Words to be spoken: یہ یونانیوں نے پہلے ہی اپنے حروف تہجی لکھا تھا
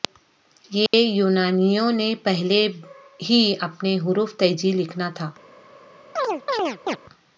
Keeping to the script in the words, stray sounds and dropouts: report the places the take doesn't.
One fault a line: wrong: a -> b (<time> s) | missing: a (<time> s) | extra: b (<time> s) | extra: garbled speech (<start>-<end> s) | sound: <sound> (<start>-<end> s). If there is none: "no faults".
sound: dropout (0.9-0.9 s)
sound: chirp (6.2-7.0 s)